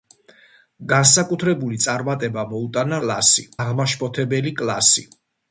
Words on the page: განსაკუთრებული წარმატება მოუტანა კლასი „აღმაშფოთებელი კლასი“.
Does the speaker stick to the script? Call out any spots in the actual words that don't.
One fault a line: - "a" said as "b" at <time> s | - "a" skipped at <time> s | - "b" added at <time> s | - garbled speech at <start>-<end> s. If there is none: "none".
none